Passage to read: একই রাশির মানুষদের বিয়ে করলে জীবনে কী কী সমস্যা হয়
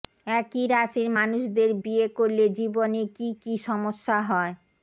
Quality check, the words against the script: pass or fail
pass